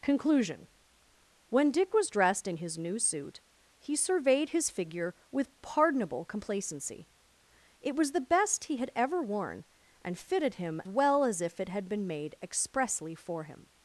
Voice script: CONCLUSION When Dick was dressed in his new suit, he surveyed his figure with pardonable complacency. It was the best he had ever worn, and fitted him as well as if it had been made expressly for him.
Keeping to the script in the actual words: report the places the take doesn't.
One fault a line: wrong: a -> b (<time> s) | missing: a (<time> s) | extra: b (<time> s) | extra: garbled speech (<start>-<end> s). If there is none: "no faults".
missing: as (10.8 s)